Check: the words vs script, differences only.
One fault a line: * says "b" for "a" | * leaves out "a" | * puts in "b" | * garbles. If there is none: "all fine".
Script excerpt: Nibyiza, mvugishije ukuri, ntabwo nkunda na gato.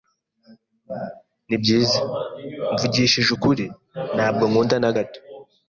all fine